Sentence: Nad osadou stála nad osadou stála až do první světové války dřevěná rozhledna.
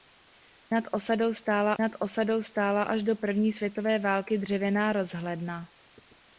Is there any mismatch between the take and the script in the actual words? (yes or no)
no